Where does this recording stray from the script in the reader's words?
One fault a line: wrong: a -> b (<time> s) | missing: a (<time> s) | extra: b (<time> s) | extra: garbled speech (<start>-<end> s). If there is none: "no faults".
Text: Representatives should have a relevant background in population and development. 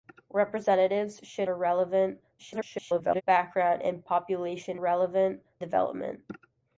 missing: have (1.5 s)
extra: garbled speech (2.4-3.2 s)
wrong: and -> relevant (4.7 s)